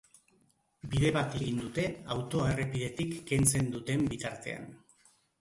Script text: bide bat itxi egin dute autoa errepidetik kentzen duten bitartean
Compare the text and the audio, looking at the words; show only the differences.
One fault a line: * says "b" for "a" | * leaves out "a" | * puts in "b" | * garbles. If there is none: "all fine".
* leaves out "itxi"